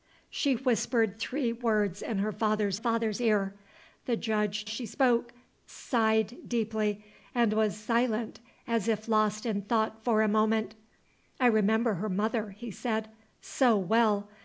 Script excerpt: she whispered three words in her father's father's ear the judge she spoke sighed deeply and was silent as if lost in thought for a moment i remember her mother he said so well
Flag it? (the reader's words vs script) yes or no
no